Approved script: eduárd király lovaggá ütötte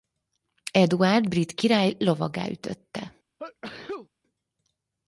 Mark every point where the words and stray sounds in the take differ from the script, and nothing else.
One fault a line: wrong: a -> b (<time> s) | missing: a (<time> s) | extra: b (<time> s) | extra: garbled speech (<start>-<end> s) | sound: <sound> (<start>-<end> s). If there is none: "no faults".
extra: brit (1.3 s)
sound: sneeze (3.4-4.1 s)